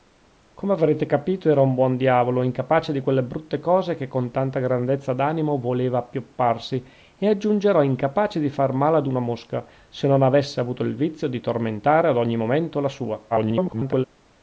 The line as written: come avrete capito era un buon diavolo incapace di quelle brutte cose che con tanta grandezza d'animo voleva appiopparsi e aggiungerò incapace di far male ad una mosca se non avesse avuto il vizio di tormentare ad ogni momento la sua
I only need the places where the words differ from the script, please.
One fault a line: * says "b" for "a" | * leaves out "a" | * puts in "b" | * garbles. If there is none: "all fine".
* garbles